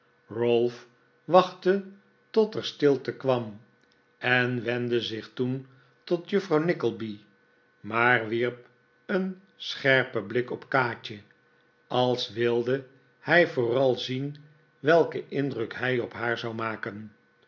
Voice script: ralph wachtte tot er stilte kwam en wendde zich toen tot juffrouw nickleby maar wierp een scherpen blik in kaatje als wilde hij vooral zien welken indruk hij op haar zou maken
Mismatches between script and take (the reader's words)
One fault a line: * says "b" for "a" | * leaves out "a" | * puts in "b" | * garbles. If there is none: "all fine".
* says "op" for "in"